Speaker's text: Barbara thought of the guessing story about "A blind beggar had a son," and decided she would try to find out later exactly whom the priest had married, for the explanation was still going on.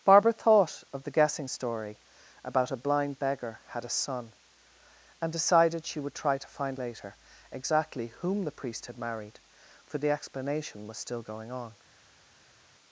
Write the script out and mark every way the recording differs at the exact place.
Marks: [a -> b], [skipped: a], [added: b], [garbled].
Barbara thought of the guessing story about "A blind beggar had a son," and decided she would try to find [skipped: out] later exactly whom the priest had married, for the explanation was still going on.